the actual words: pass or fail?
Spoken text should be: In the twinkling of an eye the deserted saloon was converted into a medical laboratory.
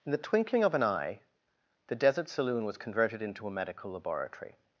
fail